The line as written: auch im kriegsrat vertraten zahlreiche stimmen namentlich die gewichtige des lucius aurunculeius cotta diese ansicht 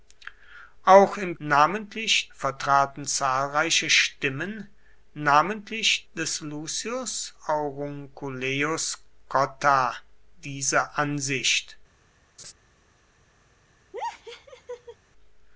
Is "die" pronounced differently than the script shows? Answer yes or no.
yes